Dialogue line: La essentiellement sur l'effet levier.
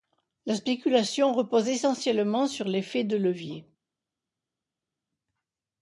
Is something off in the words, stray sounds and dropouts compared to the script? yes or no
yes